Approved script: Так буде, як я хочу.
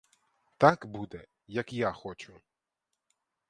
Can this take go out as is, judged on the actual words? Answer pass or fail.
pass